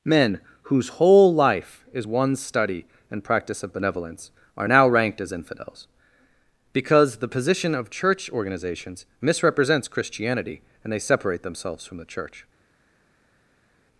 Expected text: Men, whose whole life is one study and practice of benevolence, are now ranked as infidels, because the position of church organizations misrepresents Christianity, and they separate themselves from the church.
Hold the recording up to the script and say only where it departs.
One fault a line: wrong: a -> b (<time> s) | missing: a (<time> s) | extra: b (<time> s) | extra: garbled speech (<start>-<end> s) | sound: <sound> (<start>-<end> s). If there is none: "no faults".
no faults